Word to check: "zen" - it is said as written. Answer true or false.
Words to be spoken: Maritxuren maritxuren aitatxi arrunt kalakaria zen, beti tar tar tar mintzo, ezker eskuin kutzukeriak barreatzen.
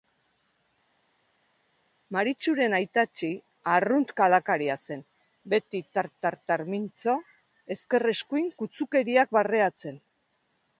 true